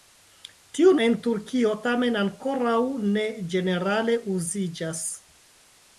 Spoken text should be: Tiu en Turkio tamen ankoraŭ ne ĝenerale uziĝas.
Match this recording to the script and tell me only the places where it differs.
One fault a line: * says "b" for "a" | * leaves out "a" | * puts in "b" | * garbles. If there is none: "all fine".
all fine